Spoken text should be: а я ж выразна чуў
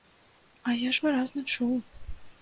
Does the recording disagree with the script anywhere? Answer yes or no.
no